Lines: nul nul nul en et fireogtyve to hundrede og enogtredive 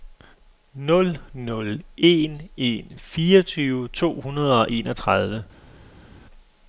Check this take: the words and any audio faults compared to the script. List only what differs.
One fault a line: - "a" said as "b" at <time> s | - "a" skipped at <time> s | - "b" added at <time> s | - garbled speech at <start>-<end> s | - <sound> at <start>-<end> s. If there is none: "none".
- "nul" said as "en" at 2.0 s
- "et" skipped at 2.9 s